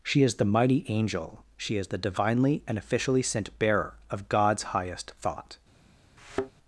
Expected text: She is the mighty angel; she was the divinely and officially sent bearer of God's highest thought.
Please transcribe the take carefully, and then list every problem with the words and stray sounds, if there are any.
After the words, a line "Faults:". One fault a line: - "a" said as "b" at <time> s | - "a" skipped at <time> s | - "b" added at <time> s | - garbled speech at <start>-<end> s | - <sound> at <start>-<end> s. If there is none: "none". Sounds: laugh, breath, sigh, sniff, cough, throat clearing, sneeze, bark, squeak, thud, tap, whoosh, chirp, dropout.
She is the mighty angel; she is the divinely and officially sent bearer of God's highest thought.
Faults:
- "was" said as "is" at 1.8 s
- thud at 6.2-6.5 s